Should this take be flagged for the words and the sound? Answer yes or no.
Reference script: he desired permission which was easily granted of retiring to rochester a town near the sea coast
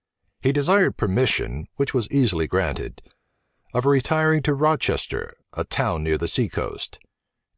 no